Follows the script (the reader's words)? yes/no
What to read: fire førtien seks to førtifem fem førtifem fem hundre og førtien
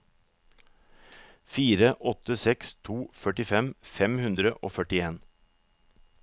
no